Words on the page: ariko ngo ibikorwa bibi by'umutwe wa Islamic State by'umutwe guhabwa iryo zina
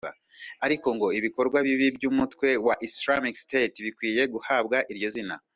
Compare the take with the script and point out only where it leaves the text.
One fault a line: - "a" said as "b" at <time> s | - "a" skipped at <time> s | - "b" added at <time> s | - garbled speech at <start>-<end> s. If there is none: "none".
- "by'umutwe" said as "bikwiye" at 3.9 s